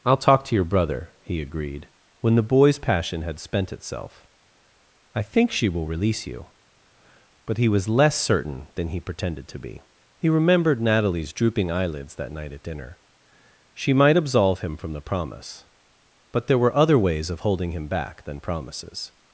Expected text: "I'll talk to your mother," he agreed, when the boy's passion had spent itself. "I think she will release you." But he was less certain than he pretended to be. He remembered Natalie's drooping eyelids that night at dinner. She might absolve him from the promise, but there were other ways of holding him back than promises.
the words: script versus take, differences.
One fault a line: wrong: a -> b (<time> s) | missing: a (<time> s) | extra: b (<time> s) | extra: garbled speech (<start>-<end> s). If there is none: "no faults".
wrong: mother -> brother (0.7 s)